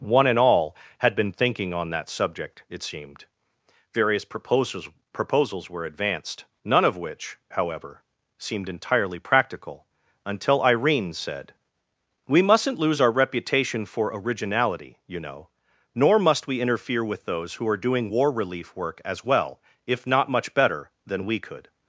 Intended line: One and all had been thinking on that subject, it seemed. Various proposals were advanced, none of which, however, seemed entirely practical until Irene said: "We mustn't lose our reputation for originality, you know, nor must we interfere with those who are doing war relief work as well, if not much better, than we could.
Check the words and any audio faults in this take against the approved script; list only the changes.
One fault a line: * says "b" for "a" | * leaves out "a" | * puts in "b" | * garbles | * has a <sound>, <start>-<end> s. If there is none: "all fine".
* puts in "proposals"